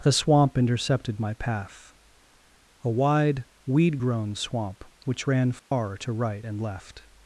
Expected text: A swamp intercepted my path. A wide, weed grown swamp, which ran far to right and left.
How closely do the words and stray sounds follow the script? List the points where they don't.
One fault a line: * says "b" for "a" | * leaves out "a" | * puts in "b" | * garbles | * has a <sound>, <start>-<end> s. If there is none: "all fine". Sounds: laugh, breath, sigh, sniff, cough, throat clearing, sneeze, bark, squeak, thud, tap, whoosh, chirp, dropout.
* says "The" for "A"
* has a dropout, 5.6-5.7 s